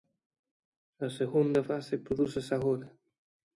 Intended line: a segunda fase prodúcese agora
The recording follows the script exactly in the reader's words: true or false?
true